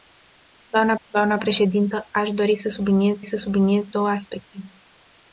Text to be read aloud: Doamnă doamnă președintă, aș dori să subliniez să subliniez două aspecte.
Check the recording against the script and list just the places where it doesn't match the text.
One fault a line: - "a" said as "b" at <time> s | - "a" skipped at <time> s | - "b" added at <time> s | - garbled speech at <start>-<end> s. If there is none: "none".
none